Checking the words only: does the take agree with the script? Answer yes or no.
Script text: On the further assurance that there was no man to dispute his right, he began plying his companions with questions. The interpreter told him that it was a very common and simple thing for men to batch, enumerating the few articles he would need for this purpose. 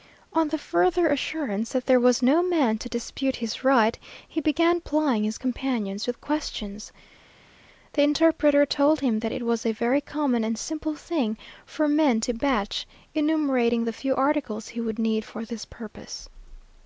yes